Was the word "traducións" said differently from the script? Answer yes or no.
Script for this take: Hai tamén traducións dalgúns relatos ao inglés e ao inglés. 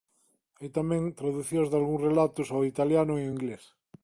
no